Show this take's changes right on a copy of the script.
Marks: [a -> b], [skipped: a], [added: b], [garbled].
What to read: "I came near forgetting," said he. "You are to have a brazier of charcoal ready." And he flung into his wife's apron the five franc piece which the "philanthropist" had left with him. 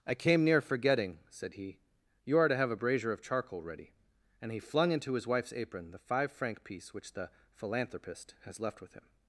"I came near forgetting," said he. "You are to have a brazier of charcoal ready." And he flung into his wife's apron the five franc piece which the "philanthropist" [had -> has] left with him.